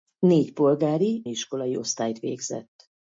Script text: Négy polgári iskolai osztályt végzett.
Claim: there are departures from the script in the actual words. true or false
false